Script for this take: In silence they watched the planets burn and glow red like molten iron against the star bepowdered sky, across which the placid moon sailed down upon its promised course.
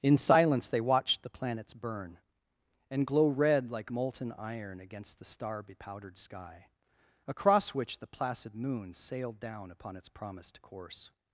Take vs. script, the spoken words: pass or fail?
pass